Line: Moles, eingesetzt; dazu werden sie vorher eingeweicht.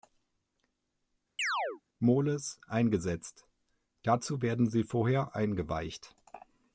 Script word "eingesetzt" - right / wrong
right